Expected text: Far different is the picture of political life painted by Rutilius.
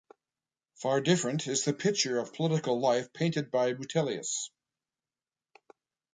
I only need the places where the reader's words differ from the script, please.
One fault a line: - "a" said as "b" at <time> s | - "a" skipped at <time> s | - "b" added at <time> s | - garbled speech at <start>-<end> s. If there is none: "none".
none